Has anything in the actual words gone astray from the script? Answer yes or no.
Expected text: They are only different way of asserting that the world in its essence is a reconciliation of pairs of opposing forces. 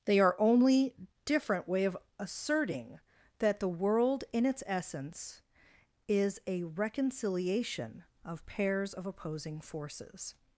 no